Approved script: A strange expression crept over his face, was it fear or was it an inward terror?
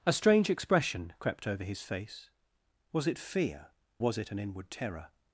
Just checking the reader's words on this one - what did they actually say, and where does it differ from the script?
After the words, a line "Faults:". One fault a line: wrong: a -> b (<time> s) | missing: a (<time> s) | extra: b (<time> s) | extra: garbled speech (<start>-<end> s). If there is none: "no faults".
A strange expression crept over his face, was it fear was it an inward terror?
Faults:
missing: or (3.7 s)